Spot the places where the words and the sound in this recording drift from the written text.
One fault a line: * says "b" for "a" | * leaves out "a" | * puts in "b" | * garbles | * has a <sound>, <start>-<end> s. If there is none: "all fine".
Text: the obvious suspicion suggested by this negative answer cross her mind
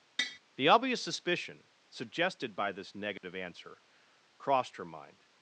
* has a tap, 0.2-0.4 s
* has a dropout, 3.2-3.2 s
* says "crossed" for "cross"